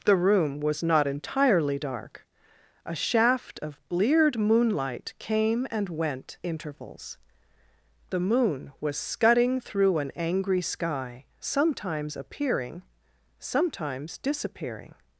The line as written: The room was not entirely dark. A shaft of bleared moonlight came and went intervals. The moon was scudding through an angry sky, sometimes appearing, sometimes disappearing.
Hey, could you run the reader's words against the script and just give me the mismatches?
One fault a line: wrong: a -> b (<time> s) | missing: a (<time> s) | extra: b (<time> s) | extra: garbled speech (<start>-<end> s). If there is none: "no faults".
no faults